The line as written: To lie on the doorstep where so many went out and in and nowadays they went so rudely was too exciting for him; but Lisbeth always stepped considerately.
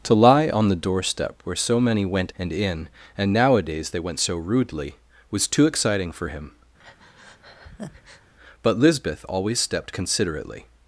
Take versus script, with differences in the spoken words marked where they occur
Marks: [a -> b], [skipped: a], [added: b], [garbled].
To lie on the doorstep where so many went [skipped: out] and in and nowadays they went so rudely was too exciting for him; but Lisbeth always stepped considerately.